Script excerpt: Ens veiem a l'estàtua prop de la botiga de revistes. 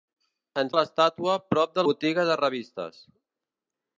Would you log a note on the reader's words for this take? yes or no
yes